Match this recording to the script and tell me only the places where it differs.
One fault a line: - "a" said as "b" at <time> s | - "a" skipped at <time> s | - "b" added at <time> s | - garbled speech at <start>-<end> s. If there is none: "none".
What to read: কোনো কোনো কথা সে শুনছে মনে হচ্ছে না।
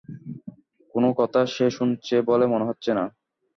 - "কোনো" skipped at 1.1 s
- "বলে" added at 2.2 s